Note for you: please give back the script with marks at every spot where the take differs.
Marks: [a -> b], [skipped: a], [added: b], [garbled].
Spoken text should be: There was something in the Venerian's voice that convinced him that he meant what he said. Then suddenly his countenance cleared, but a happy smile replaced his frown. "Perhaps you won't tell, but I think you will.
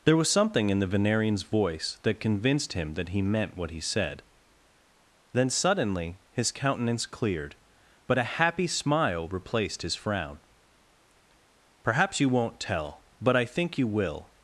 There was something in the Venerian's voice that convinced him that he meant what he said. Then suddenly his countenance cleared, but a happy smile replaced his frown. "Perhaps you won't tell, but I think you will.